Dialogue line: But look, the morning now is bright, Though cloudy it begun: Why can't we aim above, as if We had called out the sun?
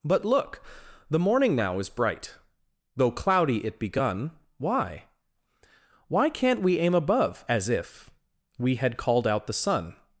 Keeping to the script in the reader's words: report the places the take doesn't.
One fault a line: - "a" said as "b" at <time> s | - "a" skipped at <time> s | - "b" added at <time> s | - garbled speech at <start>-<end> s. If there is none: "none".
- "Why" added at 6.1 s